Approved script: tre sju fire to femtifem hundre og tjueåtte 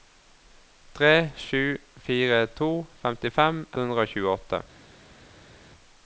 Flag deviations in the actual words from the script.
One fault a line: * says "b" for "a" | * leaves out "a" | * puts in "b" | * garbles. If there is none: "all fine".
all fine